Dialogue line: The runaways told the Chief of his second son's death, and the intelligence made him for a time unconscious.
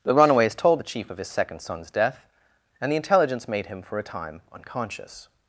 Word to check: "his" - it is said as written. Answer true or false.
true